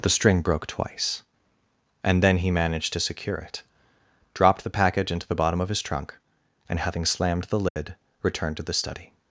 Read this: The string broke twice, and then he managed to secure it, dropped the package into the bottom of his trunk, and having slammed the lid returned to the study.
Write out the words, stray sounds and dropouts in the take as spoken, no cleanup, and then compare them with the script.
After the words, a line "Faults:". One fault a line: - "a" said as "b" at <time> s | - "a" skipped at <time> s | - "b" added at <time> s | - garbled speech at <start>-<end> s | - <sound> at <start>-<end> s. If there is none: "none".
The string broke twice, and then he managed to secure it, dropped the package into the bottom of his trunk, and having slammed the lid returned to the study.
Faults:
- dropout at 7.7-7.8 s